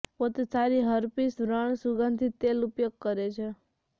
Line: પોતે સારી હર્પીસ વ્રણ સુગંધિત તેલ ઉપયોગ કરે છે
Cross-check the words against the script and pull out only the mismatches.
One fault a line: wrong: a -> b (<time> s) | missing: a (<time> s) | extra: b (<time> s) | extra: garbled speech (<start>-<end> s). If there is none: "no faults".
no faults